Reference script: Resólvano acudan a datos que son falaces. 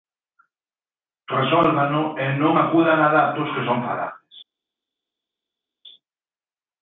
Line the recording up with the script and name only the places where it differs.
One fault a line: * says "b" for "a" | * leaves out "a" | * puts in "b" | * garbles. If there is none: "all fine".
* puts in "e non"